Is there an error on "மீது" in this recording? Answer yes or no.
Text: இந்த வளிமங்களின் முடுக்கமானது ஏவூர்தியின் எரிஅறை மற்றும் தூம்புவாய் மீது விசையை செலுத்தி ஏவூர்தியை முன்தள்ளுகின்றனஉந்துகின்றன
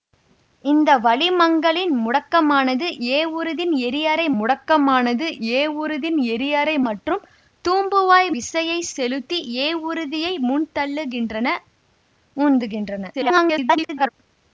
yes